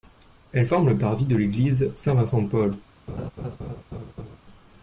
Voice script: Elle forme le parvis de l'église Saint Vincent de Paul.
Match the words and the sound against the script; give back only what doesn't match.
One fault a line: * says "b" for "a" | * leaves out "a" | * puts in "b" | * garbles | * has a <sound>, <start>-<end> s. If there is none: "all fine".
* has a laugh, 3.1-4.4 s